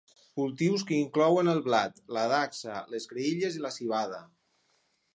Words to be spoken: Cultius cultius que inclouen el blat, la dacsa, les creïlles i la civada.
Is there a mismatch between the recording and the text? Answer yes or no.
yes